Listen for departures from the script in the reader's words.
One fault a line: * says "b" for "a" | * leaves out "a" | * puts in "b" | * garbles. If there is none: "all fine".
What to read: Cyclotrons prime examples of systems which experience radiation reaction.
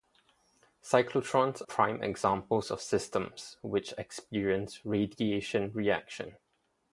all fine